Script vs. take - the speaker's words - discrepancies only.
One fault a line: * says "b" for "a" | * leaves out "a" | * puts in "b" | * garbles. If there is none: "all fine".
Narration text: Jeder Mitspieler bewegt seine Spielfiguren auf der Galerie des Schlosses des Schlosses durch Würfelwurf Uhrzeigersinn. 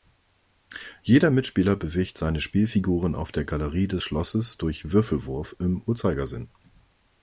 * leaves out "des Schlosses"
* puts in "im"